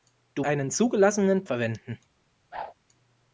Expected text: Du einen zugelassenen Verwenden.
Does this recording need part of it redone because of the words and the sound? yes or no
yes